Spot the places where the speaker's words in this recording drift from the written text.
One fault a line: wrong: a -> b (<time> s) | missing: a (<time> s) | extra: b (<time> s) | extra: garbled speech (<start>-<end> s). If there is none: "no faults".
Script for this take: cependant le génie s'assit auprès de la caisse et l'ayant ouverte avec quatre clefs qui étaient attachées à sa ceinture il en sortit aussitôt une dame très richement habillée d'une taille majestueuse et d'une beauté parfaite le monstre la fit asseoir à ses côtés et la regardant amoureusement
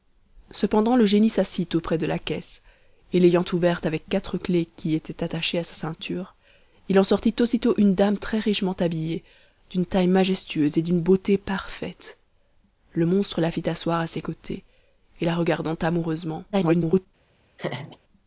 extra: garbled speech (16.5-17.1 s)